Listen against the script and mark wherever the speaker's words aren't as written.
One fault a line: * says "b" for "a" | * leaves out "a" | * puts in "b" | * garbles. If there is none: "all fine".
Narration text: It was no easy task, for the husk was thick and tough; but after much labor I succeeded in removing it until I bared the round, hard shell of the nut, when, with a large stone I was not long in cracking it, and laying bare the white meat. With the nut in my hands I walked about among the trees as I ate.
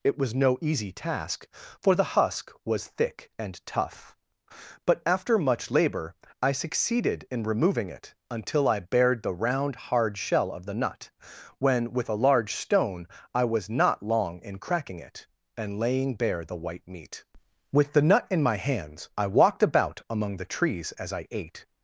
all fine